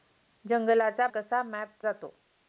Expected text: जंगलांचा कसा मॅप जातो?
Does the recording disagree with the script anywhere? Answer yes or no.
no